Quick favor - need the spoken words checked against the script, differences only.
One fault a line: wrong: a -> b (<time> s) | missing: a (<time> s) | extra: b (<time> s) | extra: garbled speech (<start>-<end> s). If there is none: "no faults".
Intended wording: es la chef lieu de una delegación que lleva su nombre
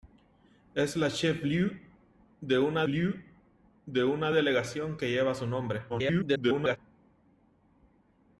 extra: lieu de una (2.9 s)
extra: garbled speech (5.9-6.8 s)